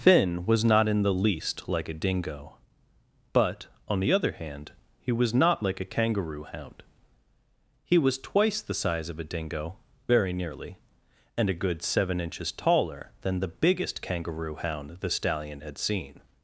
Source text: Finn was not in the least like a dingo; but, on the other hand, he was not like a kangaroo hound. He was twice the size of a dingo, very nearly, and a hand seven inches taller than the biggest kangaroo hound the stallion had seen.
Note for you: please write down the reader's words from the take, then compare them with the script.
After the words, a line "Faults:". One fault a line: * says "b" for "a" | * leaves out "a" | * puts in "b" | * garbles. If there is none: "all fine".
Finn was not in the least like a dingo; but, on the other hand, he was not like a kangaroo hound. He was twice the size of a dingo, very nearly, and a good seven inches taller than the biggest kangaroo hound the stallion had seen.
Faults:
* says "good" for "hand"